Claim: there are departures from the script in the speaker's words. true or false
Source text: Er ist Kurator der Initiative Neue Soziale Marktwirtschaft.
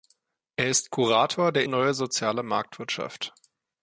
true